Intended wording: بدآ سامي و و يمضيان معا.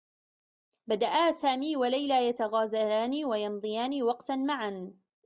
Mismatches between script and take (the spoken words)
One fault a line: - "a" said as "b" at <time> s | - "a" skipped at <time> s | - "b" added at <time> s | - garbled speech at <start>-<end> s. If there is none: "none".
- "ليلى يتغازلان" added at 1.9 s
- "وقتا" added at 4.0 s